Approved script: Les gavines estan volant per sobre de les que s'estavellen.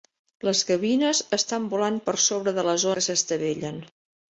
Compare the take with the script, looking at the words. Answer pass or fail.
pass